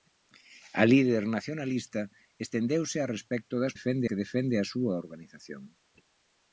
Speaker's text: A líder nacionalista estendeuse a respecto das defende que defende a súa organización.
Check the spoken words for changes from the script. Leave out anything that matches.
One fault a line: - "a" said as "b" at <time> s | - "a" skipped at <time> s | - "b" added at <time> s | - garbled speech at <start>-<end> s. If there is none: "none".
none